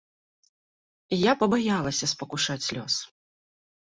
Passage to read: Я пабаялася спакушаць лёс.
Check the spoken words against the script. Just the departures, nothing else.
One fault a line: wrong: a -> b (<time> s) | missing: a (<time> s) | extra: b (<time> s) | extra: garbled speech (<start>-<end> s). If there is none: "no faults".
no faults